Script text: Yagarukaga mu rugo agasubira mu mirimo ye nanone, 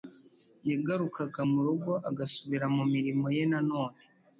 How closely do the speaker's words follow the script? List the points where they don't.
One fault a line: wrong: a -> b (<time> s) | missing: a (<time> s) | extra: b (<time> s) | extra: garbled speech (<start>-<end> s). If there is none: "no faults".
no faults